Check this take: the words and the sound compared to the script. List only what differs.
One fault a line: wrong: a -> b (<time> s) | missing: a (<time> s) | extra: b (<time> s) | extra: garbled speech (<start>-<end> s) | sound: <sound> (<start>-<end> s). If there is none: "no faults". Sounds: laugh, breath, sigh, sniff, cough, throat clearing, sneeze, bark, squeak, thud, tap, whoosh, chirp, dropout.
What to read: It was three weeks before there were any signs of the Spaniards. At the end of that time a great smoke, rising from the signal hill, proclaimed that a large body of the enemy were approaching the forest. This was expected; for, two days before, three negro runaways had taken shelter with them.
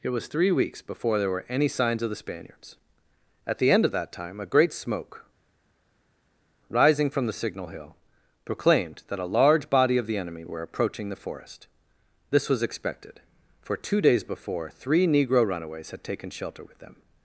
no faults